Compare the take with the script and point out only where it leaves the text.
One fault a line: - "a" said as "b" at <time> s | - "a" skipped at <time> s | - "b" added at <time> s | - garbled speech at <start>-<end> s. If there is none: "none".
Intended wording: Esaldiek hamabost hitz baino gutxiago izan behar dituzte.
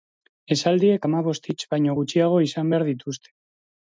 none